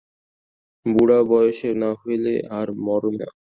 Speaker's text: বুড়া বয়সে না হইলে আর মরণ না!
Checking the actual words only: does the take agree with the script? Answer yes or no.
yes